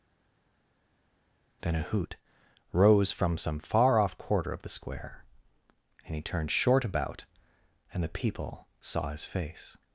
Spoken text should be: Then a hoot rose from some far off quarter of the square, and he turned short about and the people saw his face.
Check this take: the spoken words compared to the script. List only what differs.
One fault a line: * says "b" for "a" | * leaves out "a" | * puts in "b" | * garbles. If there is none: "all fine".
all fine